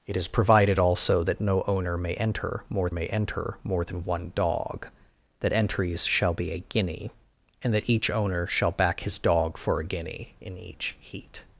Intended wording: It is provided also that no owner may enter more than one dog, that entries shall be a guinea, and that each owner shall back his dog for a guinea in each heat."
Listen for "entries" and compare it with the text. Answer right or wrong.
right